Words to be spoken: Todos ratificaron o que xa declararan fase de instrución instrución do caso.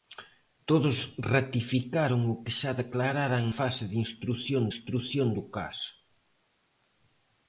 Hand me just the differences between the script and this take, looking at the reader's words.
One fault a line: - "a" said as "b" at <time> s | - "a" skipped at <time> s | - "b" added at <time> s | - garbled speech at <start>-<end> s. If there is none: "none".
none